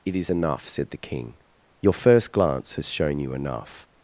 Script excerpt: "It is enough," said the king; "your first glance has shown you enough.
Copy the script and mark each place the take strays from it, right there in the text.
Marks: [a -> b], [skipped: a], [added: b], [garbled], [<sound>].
"It is enough," said the king; "your first glance has shown you enough.